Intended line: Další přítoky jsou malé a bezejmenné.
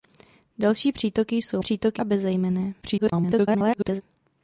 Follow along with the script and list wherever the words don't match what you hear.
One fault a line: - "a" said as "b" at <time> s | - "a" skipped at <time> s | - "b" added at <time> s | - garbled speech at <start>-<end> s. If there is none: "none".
- "malé" said as "přítoky" at 1.6 s
- garbled speech at 2.8-4.0 s